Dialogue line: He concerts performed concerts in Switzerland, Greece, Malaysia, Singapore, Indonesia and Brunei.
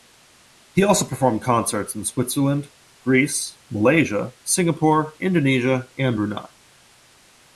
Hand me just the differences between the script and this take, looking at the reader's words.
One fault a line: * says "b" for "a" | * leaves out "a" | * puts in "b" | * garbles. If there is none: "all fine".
* says "also" for "concerts"